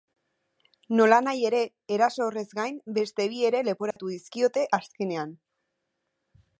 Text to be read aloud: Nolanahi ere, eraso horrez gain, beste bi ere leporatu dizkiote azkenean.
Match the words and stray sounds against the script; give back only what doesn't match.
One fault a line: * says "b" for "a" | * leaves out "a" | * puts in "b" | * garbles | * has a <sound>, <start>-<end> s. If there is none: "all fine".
* has a dropout, 3.9-4.0 s